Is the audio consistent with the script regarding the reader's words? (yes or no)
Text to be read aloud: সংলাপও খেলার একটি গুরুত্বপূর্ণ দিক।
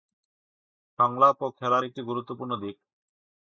yes